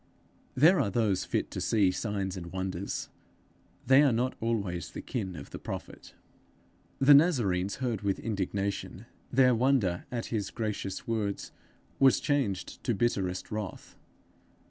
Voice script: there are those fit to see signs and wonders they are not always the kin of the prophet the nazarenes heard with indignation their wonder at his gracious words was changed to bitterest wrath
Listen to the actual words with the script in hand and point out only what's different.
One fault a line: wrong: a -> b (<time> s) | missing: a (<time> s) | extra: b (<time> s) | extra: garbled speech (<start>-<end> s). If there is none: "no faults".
no faults